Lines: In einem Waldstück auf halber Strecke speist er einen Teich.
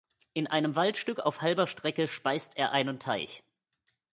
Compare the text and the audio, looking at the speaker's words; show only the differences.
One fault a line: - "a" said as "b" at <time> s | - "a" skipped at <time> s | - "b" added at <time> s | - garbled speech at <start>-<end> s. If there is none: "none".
none